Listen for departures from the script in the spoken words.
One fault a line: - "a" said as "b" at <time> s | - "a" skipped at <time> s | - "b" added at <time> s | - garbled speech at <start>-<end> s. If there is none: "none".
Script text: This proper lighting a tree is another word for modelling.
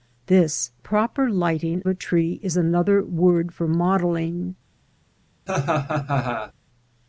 none